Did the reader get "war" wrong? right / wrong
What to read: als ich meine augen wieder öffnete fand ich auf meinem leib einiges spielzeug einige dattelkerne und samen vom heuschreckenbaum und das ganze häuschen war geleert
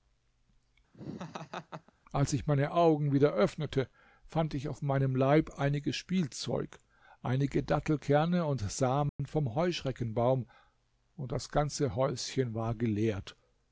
right